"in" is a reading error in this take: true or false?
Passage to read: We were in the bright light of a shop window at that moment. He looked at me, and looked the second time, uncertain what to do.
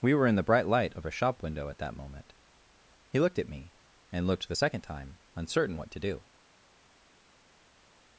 false